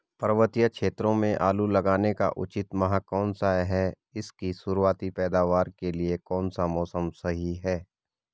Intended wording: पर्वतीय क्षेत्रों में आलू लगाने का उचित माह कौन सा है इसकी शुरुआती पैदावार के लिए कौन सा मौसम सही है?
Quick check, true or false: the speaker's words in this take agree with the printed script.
true